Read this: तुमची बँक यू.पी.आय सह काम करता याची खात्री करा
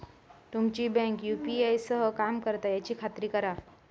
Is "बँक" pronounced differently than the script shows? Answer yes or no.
no